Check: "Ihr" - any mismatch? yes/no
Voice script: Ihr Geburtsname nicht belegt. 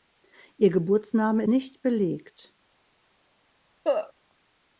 no